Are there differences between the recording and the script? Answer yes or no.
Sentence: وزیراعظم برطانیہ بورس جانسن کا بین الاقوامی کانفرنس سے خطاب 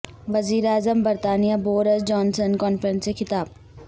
yes